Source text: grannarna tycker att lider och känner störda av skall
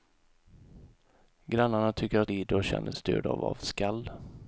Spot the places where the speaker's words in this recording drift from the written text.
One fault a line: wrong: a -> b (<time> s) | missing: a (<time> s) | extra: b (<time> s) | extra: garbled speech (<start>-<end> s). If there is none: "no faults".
no faults